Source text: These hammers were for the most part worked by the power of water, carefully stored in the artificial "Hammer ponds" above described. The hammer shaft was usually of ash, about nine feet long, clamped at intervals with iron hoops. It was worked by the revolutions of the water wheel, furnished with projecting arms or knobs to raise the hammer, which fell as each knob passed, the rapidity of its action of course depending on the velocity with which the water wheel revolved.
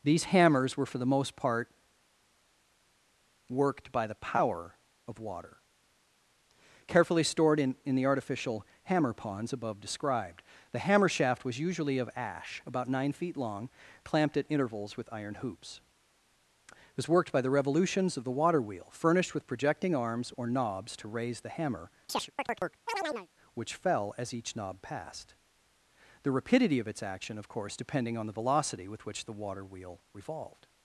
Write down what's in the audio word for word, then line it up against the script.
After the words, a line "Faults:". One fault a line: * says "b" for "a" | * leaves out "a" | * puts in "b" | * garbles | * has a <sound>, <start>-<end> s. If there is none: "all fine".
These hammers were for the most part worked by the power of water, carefully stored in in the artificial "Hammer ponds" above described. The hammer shaft was usually of ash, about nine feet long, clamped at intervals with iron hoops. It was worked by the revolutions of the water wheel, furnished with projecting arms or knobs to raise the hammer, which fell as each knob passed, the rapidity of its action of course depending on the velocity with which the water wheel revolved.
Faults:
* puts in "in"
* has a chirp, 22.1-23.3 s